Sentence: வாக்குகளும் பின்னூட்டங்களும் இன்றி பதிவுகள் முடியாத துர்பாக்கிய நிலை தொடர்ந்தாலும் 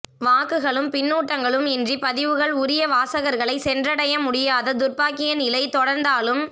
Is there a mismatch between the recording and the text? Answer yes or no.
yes